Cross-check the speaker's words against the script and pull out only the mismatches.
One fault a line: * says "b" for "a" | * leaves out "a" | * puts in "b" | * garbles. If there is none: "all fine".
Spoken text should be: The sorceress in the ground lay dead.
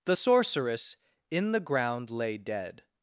all fine